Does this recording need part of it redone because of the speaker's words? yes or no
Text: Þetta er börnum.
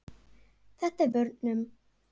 no